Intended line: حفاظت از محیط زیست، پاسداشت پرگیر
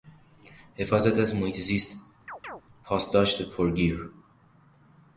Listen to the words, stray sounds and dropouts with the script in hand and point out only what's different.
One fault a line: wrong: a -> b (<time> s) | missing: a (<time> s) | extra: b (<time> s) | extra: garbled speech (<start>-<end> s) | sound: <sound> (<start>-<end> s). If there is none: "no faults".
sound: chirp (2.3-2.6 s)